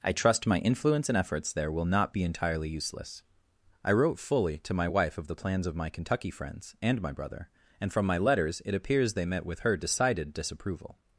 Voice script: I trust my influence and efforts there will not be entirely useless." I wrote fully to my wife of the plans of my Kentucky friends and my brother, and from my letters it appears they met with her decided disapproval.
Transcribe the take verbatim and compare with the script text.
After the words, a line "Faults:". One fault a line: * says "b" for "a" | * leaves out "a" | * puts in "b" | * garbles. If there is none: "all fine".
I trust my influence and efforts there will not be entirely useless." I wrote fully to my wife of the plans of my Kentucky friends and my brother, and from my letters it appears they met with her decided disapproval.
Faults:
all fine